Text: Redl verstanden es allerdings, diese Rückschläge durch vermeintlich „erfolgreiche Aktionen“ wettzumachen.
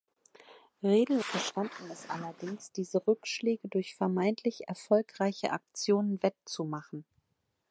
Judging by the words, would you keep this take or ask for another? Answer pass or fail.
pass